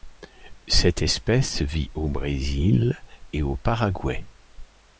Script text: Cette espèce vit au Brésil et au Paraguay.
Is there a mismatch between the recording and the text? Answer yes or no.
no